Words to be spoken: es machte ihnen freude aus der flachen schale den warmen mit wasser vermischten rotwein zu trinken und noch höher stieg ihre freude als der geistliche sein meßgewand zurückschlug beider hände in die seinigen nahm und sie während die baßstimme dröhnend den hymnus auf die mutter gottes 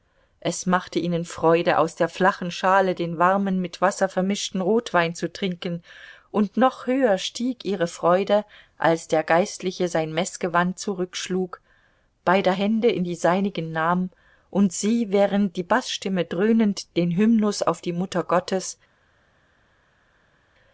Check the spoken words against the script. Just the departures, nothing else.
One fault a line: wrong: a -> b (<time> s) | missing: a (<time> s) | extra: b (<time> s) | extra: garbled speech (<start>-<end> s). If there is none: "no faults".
no faults